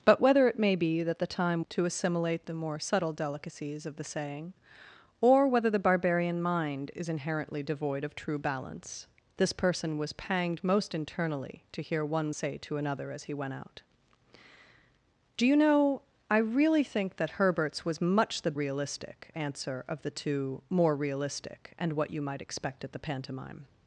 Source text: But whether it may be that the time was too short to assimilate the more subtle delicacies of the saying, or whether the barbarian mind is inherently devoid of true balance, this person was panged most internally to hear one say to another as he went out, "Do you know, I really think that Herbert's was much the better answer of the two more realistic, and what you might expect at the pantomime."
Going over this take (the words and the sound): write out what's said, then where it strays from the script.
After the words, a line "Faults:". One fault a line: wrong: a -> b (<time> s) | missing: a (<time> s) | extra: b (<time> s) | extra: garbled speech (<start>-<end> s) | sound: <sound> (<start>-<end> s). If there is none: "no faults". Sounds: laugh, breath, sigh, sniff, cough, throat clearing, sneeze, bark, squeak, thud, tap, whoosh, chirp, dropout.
But whether it may be that the time to assimilate the more subtle delicacies of the saying, or whether the barbarian mind is inherently devoid of true balance, this person was panged most internally to hear one say to another as he went out, "Do you know, I really think that Herbert's was much the realistic answer of the two more realistic, and what you might expect at the pantomime."
Faults:
missing: was too short (1.6 s)
wrong: better -> realistic (18.5 s)